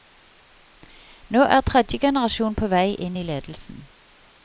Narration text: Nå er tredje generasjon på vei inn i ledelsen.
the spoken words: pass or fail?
pass